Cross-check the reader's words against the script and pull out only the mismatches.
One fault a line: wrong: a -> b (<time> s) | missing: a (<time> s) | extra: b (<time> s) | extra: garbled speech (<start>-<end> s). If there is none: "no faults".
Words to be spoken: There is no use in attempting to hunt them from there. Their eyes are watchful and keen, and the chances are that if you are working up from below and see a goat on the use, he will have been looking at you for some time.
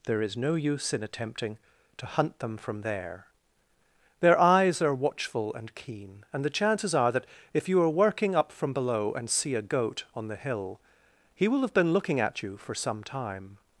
wrong: use -> hill (10.3 s)